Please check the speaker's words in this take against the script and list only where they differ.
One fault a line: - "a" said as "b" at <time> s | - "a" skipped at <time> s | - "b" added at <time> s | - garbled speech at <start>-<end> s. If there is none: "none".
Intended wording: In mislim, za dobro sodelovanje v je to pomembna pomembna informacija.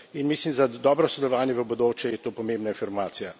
- "bodoče" added at 1.6 s
- "pomembna" skipped at 2.7 s